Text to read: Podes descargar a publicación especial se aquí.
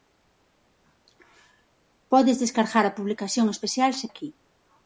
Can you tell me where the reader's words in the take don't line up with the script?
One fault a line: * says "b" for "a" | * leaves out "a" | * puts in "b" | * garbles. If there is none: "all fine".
all fine